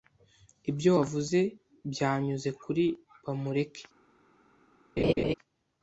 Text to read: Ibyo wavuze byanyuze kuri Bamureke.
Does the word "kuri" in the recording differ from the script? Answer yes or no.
no